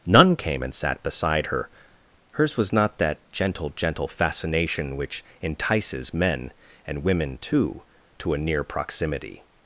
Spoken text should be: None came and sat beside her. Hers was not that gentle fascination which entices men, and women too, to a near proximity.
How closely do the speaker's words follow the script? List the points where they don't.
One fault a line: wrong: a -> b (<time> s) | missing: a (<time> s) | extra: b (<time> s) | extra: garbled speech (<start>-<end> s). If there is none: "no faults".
extra: gentle (3.7 s)